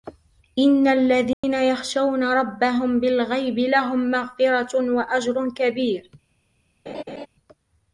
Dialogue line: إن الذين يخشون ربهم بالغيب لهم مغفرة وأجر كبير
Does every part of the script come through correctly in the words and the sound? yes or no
no